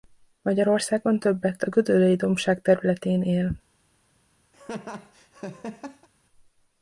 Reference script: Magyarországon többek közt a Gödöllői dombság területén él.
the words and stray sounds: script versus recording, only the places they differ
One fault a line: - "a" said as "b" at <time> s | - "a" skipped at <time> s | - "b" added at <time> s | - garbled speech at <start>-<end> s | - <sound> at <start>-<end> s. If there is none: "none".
- "közt" skipped at 1.6 s
- laugh at 4.5-6.1 s